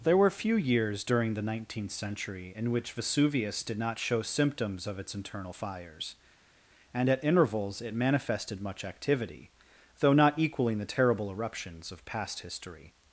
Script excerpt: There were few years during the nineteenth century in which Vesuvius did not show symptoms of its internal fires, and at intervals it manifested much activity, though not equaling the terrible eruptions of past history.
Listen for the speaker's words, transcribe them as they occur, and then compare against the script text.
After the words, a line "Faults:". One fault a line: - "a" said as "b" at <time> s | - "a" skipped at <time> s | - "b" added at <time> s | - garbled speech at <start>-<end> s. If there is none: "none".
There were few years during the nineteenth century in which Vesuvius did not show symptoms of its internal fires, and at intervals it manifested much activity, though not equaling the terrible eruptions of past history.
Faults:
none